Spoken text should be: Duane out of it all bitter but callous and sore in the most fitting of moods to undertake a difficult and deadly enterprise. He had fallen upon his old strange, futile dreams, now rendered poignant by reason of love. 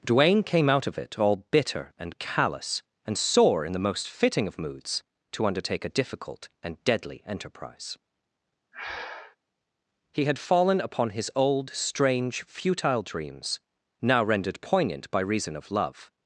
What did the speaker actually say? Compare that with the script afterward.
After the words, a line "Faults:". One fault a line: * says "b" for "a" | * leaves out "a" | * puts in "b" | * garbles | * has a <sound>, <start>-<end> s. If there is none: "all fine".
Duane came out of it all bitter and callous and sore in the most fitting of moods to undertake a difficult and deadly enterprise. He had fallen upon his old strange, futile dreams, now rendered poignant by reason of love.
Faults:
* puts in "came"
* says "and" for "but"
* has a breath, 8.7-9.4 s